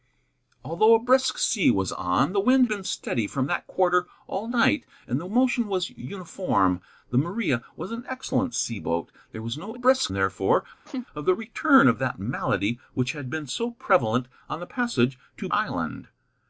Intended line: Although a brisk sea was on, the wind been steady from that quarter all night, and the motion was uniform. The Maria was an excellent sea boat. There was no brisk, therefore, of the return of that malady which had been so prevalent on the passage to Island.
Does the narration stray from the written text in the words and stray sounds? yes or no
yes